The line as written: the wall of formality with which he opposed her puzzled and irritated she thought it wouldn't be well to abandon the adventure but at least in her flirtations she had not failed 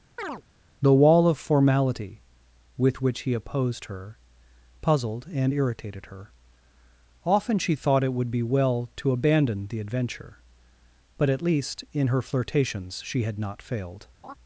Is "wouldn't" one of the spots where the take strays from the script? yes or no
yes